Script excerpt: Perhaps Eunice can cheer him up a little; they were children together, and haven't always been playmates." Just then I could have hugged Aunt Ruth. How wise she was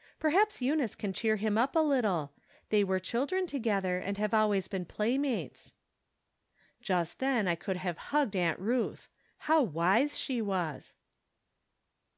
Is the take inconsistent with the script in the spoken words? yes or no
yes